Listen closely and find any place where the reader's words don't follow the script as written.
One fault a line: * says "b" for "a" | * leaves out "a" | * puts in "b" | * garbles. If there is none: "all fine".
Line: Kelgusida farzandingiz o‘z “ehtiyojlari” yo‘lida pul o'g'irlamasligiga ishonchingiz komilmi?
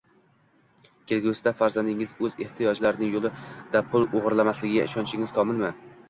all fine